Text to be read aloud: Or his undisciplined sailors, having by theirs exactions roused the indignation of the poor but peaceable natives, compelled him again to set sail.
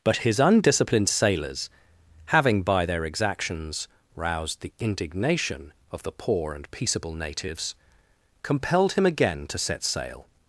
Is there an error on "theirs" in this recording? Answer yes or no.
yes